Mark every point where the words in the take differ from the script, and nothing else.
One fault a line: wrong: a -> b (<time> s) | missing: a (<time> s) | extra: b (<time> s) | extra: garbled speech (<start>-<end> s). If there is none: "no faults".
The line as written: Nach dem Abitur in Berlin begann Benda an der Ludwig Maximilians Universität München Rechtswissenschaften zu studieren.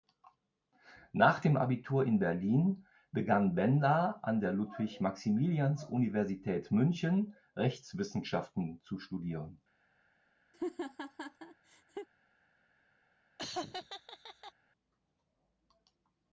no faults